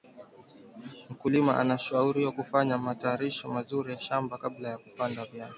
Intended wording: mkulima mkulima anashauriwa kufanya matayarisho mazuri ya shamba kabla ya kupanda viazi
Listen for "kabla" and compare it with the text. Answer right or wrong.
right